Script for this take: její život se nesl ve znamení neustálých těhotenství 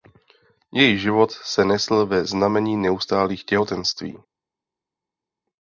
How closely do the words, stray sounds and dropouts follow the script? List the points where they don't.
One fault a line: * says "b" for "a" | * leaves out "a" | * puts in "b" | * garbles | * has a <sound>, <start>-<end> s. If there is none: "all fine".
all fine